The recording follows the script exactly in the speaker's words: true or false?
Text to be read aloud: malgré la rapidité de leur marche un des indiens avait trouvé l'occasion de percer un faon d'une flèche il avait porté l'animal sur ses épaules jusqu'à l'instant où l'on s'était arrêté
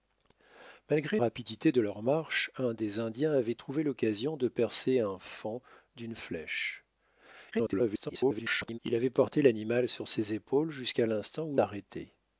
false